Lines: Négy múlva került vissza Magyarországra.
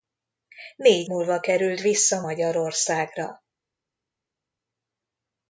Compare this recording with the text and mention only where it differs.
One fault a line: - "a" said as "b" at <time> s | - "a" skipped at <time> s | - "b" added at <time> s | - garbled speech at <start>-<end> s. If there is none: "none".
none